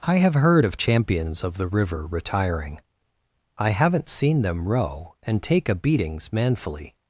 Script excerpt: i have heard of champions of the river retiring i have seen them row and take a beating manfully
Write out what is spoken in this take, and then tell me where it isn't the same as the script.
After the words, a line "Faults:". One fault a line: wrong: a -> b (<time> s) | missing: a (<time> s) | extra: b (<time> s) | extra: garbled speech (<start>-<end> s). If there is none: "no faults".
i have heard of champions of the river retiring i haven't seen them row and take a beatings manfully
Faults:
wrong: have -> haven't (3.7 s)
wrong: beating -> beatings (5.8 s)